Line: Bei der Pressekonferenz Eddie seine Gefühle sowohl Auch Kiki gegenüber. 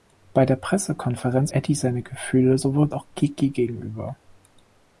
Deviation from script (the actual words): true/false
false